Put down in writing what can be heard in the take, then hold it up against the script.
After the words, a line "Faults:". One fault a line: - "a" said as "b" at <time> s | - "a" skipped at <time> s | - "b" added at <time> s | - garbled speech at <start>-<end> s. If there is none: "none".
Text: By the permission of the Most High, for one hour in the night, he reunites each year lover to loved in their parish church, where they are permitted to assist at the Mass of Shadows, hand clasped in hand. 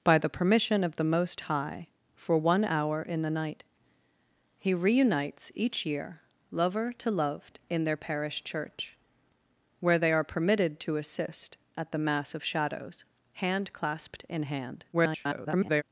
By the permission of the Most High, for one hour in the night, he reunites each year lover to loved in their parish church, where they are permitted to assist at the Mass of Shadows, hand clasped in hand. [garbled]
Faults:
- garbled speech at 14.9-15.8 s